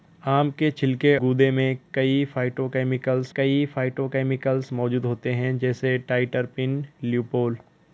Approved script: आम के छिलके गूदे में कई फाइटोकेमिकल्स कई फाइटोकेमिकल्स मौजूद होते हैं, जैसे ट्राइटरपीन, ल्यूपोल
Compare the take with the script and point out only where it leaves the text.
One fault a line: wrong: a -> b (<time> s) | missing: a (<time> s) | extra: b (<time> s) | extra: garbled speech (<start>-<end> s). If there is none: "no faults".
no faults